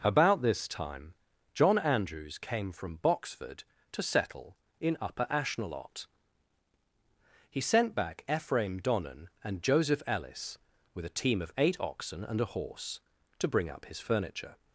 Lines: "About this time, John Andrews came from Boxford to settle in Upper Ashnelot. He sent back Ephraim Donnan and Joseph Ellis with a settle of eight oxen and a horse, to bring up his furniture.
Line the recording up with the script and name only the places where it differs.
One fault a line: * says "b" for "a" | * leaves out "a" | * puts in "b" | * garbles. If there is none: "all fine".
* says "team" for "settle"